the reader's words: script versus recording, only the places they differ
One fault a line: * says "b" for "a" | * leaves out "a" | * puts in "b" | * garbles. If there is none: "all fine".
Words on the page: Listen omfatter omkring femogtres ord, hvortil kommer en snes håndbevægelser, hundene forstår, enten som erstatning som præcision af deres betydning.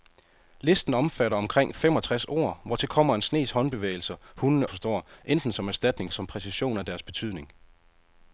all fine